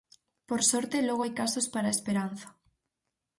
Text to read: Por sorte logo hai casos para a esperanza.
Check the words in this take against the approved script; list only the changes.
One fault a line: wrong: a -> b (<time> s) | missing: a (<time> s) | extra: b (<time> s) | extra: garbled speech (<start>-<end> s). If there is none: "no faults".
no faults